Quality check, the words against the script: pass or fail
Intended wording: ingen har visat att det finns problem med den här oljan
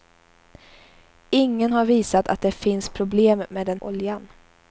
fail